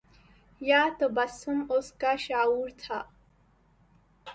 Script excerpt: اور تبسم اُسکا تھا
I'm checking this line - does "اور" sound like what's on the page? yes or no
no